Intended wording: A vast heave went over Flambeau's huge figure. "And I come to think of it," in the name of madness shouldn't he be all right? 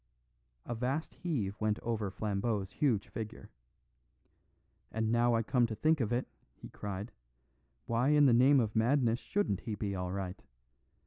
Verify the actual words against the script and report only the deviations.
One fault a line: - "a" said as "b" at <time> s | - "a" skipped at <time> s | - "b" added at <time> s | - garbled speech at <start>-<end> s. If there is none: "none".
- "now" added at 5.1 s
- "he cried why" added at 6.5 s